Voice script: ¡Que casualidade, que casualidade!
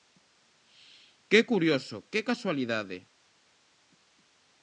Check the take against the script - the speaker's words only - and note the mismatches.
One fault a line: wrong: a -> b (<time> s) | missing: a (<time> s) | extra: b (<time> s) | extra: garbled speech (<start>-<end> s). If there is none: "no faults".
wrong: casualidade -> curioso (1.5 s)